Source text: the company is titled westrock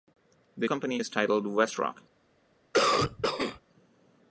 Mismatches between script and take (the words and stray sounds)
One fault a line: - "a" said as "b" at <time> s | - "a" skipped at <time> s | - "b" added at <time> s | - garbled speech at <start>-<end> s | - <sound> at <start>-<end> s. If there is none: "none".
- cough at 2.7-3.6 s